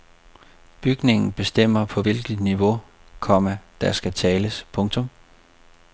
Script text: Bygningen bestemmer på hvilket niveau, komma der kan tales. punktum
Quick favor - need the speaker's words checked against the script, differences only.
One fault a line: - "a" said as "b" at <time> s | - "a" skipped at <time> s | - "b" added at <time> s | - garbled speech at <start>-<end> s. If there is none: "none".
- "kan" said as "skal" at 3.9 s